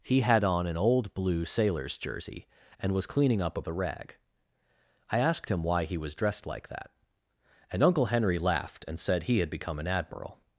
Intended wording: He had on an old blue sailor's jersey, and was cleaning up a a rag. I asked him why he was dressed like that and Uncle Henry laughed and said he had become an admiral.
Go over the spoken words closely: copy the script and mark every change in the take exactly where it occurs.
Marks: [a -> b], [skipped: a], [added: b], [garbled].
He had on an old blue sailor's jersey, and was cleaning up a a rag. I asked him why he was dressed like that and Uncle Henry laughed and said he had become an admiral.